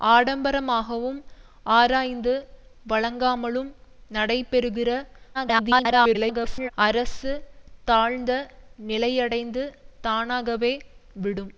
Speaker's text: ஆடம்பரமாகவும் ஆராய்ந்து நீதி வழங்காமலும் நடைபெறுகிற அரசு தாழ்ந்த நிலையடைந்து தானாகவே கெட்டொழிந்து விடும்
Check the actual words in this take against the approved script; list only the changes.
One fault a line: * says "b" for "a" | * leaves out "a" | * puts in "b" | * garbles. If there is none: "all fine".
* leaves out "நீதி"
* garbles
* leaves out "கெட்டொழிந்து"